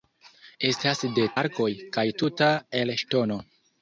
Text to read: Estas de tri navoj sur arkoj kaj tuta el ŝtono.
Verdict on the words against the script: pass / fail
fail